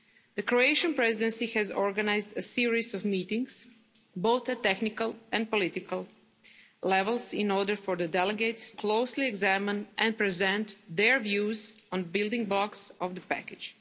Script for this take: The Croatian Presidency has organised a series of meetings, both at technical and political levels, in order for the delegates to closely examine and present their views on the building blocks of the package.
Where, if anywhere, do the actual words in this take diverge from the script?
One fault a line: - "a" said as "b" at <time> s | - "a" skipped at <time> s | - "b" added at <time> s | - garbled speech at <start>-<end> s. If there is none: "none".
- "to" skipped at 8.7 s